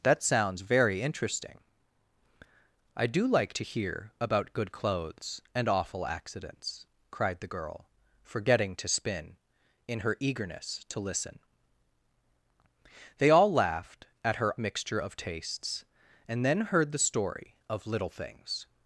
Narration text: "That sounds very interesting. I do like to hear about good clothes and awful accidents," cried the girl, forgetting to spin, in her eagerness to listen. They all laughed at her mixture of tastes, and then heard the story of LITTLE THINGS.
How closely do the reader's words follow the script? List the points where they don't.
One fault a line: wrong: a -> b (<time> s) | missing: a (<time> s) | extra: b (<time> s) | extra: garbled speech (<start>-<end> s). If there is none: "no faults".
no faults